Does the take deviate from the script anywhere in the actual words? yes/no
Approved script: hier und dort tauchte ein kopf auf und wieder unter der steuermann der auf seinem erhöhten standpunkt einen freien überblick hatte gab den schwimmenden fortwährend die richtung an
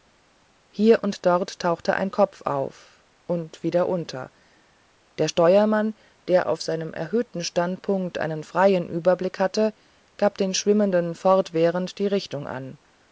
no